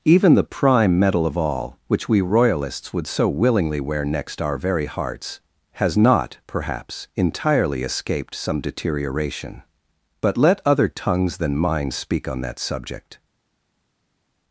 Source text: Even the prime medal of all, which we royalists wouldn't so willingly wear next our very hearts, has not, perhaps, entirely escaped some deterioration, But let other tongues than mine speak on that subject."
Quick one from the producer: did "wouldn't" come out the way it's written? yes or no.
no